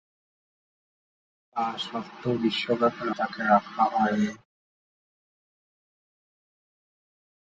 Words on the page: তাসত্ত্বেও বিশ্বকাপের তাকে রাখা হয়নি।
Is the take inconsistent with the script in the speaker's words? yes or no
no